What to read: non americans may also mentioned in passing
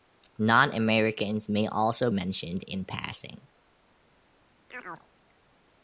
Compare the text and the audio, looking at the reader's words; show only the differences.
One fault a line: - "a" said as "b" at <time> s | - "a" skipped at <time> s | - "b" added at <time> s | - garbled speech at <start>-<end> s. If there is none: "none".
none